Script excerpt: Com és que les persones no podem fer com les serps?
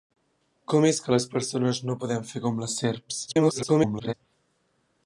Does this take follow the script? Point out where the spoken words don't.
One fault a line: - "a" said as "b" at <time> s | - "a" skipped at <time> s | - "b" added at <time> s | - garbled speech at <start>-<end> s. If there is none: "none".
- garbled speech at 3.3-4.1 s